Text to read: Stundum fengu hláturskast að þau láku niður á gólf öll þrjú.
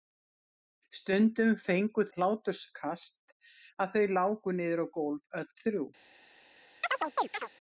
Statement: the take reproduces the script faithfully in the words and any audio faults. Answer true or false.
false